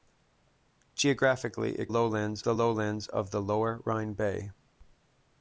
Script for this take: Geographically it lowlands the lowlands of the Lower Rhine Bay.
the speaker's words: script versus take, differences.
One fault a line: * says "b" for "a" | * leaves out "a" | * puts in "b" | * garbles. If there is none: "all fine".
all fine